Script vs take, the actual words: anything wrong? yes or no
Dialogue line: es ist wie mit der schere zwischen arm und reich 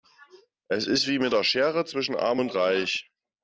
no